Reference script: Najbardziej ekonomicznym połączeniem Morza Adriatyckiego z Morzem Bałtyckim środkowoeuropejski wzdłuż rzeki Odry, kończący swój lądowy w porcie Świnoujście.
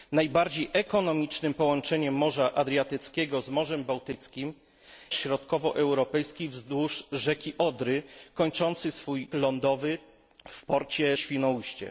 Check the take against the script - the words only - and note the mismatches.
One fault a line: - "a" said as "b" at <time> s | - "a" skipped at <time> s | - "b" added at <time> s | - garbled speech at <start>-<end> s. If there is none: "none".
none